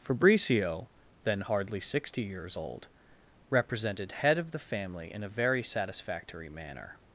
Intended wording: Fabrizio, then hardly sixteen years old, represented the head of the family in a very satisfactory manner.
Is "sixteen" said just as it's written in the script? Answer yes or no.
no